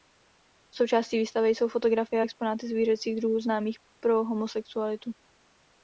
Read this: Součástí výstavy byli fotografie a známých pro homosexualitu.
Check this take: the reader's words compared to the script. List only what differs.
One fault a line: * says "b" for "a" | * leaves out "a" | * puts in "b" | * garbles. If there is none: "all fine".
* says "jsou" for "byli"
* puts in "exponáty zvířecích druhů"